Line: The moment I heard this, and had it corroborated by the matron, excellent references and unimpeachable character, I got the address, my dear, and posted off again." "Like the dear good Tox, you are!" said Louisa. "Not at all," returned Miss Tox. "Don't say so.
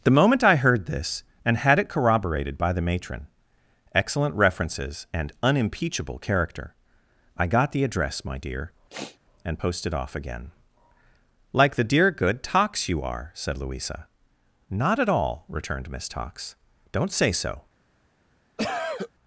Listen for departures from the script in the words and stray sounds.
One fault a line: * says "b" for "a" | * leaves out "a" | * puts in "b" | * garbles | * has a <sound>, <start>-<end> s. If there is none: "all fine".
* has a sniff, 8.9-9.2 s
* has a cough, 18.6-19.1 s